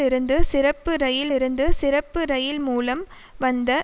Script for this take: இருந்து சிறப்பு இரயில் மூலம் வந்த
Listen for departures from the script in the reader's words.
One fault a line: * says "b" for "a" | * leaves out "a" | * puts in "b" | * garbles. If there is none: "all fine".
* puts in "இருந்து சிறப்பு இரயில்"